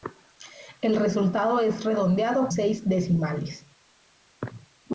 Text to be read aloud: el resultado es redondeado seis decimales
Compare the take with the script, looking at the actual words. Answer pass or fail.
pass